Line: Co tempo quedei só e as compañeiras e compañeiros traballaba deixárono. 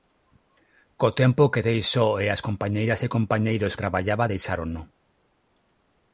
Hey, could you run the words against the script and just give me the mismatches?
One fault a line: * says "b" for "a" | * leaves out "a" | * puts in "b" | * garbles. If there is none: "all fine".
all fine